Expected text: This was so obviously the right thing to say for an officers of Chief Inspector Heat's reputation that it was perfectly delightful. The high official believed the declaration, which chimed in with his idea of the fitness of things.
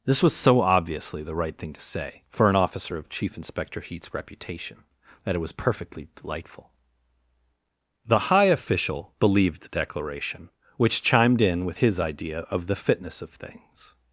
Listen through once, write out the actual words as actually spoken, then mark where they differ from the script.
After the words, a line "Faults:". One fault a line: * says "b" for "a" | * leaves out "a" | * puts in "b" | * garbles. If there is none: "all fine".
This was so obviously the right thing to say for an officer of Chief Inspector Heat's reputation that it was perfectly delightful. The high official believed the declaration, which chimed in with his idea of the fitness of things.
Faults:
* says "officer" for "officers"